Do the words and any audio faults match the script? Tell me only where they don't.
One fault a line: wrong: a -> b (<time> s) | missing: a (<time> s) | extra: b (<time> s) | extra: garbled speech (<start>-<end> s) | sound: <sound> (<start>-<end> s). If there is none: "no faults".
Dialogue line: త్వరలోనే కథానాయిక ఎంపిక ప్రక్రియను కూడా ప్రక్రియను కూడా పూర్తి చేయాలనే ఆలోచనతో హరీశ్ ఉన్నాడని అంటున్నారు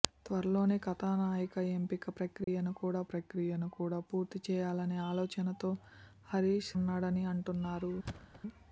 sound: dropout (2.4-2.5 s)
sound: thud (8.0-8.4 s)